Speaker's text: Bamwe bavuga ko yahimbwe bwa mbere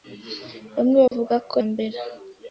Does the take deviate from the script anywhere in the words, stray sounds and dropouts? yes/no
yes